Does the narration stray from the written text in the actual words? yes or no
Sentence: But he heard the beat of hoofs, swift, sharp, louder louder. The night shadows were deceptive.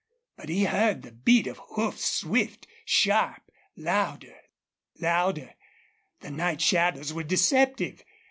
no